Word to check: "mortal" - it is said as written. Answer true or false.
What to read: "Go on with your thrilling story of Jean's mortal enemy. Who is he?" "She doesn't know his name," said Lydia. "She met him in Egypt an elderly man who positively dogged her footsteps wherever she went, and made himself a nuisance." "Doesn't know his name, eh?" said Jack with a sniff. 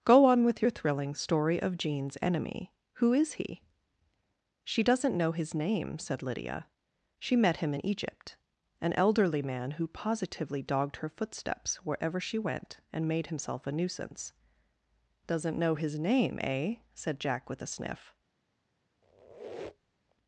false